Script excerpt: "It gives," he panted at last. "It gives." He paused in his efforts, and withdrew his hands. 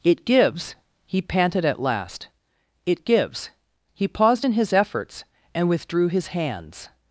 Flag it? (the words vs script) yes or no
no